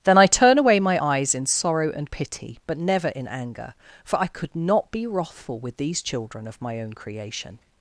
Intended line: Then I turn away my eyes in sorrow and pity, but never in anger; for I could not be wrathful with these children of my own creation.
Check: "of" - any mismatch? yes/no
no